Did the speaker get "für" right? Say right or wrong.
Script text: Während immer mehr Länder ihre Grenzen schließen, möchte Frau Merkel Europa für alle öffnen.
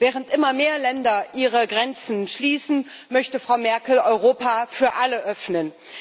right